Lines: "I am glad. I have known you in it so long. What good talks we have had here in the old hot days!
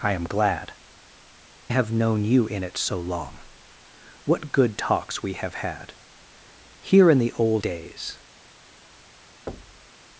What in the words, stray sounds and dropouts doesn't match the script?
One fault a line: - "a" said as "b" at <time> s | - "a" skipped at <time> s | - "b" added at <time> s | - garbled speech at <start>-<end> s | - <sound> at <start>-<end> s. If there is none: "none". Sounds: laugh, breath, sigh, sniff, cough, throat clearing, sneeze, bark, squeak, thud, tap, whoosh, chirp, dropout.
- "I" skipped at 0.7 s
- "hot" skipped at 7.6 s
- thud at 9.5-9.9 s